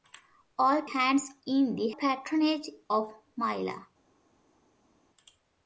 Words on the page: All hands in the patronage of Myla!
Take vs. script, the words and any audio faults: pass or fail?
pass